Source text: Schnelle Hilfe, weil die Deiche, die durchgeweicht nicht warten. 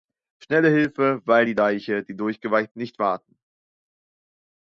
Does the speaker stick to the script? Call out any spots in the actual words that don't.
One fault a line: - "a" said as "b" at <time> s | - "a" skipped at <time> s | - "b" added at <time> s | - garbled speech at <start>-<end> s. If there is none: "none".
none